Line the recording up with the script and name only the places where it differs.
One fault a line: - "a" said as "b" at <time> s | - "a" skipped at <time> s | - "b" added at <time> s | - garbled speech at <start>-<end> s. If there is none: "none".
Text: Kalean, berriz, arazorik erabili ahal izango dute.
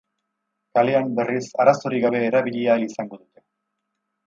- "gabe" added at 2.1 s